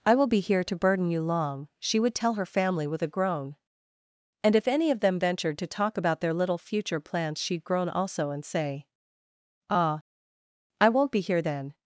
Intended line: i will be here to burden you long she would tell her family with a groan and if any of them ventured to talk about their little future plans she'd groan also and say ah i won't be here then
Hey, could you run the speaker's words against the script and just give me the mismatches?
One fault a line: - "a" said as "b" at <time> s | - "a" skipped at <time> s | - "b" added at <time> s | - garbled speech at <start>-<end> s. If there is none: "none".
none